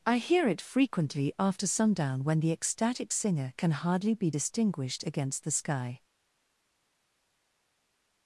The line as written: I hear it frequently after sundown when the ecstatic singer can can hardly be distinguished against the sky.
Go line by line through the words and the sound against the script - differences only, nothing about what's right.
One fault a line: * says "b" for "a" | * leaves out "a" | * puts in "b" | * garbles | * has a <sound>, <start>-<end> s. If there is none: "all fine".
* leaves out "can"